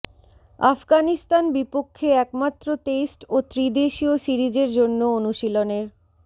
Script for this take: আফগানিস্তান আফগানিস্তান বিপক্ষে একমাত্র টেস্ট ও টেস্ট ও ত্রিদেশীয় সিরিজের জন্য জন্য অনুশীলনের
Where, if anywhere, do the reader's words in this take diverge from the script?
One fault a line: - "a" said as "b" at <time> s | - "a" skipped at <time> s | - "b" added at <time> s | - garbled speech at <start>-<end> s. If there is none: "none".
- "আফগানিস্তান" skipped at 1.4 s
- "টেস্ট ও" skipped at 3.5 s
- "জন্য" skipped at 5.0 s